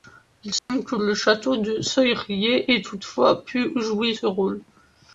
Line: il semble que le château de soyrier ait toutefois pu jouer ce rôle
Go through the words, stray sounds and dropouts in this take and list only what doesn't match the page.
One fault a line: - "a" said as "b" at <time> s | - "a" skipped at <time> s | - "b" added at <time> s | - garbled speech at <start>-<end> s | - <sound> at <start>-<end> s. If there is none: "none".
- dropout at 0.6-0.7 s